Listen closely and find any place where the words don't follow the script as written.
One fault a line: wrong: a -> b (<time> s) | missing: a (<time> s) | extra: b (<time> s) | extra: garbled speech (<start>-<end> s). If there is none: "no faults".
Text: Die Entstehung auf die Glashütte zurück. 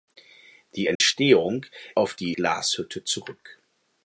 no faults